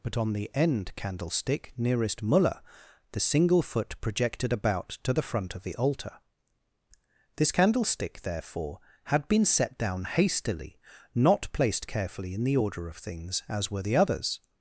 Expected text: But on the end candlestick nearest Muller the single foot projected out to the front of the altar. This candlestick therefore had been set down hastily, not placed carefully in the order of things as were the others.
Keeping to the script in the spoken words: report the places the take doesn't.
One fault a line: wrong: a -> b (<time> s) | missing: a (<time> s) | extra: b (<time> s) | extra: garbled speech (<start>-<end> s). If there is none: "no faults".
wrong: out -> about (4.5 s)